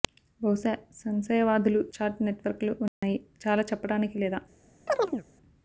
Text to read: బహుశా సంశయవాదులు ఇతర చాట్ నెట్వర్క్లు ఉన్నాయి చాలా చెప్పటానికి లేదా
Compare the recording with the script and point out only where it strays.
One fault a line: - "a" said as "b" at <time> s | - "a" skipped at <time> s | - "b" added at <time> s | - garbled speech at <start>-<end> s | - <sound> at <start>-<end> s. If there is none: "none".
- "ఇతర" skipped at 1.8 s
- dropout at 2.9-3.0 s
- chirp at 4.9-5.2 s